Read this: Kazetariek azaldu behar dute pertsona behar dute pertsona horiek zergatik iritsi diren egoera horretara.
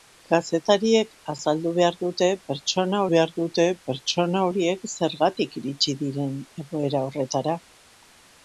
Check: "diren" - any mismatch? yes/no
no